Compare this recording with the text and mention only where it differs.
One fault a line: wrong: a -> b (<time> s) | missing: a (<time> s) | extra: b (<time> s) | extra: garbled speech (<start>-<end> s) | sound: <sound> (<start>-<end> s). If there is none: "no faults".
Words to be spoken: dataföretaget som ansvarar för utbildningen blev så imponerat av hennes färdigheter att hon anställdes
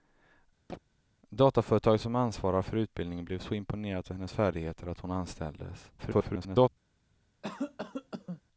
sound: chirp (0.7-0.8 s)
extra: garbled speech (6.0-6.7 s)
sound: cough (7.4-8.4 s)